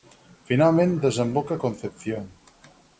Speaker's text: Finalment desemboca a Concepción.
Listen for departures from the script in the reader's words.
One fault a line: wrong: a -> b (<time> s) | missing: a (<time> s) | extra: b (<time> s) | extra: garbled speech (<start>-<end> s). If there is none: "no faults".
no faults